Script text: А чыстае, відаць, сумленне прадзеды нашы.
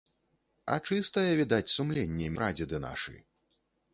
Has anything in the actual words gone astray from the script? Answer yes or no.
no